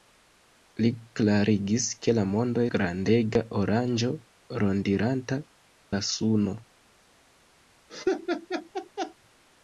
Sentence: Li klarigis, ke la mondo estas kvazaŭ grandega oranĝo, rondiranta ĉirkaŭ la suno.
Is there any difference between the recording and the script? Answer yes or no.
yes